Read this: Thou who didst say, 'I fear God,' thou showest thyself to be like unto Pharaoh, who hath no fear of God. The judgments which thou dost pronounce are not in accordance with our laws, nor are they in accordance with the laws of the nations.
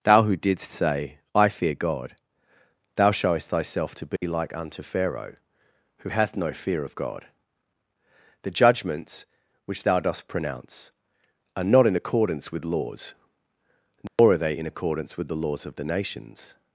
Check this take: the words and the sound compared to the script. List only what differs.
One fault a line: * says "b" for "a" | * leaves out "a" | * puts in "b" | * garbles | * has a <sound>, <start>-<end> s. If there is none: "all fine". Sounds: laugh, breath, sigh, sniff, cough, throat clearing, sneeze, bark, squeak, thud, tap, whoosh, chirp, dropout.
* has a dropout, 4.2-4.2 s
* leaves out "our"
* has a dropout, 14.1-14.2 s